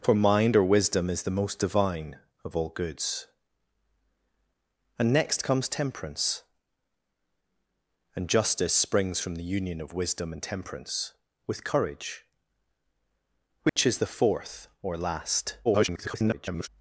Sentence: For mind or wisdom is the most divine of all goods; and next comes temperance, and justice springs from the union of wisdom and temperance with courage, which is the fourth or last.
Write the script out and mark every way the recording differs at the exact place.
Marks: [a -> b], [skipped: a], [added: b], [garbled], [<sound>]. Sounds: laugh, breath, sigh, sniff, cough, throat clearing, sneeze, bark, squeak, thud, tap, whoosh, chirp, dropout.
For mind or wisdom is the most divine of all goods; and next comes temperance, and justice springs from the union of wisdom and temperance with courage, which [dropout] is the fourth or last. [garbled]